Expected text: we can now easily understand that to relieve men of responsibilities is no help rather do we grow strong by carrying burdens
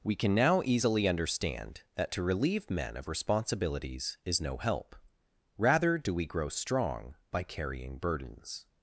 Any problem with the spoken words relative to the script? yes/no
no